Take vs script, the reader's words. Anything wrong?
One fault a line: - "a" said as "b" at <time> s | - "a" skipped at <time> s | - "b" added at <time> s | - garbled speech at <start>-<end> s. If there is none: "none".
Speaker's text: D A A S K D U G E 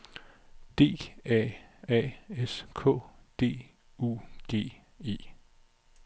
none